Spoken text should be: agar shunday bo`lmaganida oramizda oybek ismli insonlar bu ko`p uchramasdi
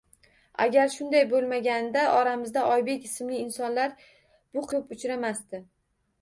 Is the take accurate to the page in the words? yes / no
yes